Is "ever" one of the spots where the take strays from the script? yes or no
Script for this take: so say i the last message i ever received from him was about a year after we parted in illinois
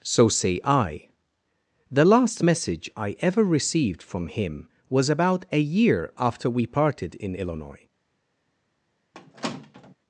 no